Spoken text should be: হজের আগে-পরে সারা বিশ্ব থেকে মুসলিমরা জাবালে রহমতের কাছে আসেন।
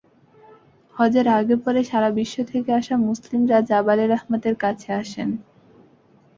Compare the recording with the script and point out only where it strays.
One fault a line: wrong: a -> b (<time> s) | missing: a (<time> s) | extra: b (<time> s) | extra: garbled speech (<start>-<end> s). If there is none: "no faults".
extra: আসা (2.7 s)